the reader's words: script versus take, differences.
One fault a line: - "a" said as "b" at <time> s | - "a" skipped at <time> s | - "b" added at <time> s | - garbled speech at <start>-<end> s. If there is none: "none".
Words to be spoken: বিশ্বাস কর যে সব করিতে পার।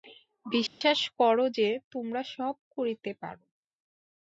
- "তোমরা" added at 1.9 s